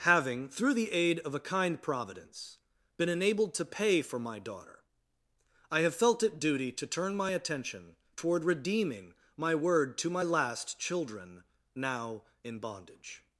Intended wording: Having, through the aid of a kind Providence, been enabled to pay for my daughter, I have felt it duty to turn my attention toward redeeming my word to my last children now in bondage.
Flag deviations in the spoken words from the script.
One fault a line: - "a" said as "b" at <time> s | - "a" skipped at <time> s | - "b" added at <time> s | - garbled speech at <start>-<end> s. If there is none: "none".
none